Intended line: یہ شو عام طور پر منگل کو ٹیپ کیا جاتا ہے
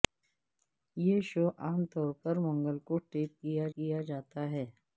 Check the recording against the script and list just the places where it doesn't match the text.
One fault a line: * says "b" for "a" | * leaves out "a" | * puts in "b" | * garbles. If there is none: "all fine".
* puts in "کیا"